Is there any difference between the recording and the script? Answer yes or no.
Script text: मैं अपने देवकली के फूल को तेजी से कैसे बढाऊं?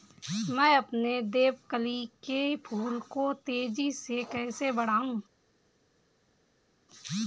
no